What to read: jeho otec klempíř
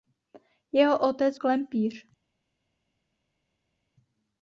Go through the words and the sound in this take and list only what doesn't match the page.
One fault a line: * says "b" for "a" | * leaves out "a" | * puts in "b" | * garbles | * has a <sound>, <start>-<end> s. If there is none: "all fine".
all fine